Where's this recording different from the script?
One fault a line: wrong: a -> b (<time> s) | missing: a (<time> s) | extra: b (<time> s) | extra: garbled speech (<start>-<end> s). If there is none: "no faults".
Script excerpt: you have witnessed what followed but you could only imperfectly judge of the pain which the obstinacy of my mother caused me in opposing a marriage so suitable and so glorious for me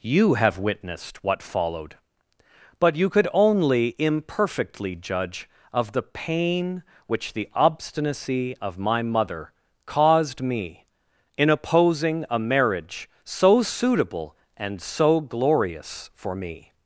no faults